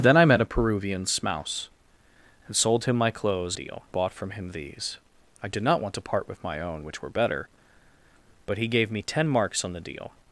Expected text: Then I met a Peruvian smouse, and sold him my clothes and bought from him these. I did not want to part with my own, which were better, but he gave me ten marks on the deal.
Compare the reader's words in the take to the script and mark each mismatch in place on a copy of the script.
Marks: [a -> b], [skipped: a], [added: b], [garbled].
Then I met a Peruvian smouse, and sold him my clothes [and -> deal] bought from him these. I did not want to part with my own, which were better, but he gave me ten marks on the deal.